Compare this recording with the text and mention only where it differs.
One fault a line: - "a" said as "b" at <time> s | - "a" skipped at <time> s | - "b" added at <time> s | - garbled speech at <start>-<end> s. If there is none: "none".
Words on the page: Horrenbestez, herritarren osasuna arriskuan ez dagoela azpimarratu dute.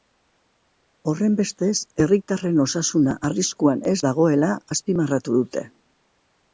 none